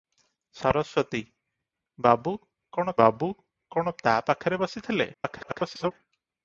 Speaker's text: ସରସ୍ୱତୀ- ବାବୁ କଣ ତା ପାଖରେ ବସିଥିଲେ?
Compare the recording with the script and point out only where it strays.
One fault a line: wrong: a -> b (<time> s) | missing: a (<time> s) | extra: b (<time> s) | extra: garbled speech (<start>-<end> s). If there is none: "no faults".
extra: ବାବୁ କଣ (3.0 s)
extra: garbled speech (5.1-5.9 s)